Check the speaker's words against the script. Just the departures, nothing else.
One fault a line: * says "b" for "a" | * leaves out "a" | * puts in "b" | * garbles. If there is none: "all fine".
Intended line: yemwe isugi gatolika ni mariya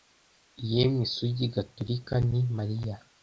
all fine